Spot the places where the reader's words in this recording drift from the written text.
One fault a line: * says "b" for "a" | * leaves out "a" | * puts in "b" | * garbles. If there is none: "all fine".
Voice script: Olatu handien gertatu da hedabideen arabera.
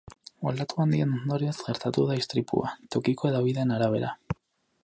* puts in "ondorioz"
* puts in "istripua tokiko"